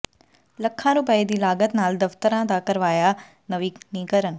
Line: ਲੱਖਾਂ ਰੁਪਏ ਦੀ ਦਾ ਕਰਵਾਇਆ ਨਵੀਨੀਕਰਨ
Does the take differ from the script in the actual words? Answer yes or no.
yes